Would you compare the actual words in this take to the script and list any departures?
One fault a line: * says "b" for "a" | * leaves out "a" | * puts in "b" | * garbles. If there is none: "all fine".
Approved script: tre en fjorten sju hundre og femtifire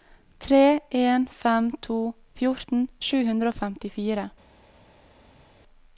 * puts in "fem to"